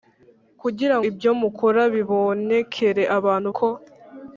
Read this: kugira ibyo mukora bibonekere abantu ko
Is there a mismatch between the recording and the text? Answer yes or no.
no